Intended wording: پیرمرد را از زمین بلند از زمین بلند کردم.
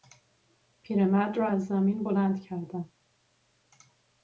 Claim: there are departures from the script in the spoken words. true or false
true